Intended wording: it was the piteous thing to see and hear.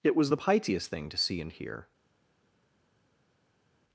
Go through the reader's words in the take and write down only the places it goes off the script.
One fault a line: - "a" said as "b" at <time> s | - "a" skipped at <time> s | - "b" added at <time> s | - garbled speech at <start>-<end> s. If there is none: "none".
none